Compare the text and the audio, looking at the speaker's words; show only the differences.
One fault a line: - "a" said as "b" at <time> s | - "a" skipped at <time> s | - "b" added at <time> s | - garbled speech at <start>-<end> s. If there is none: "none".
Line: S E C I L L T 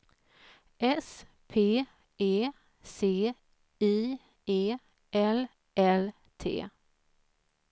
- "P" added at 1.5 s
- "E" added at 4.5 s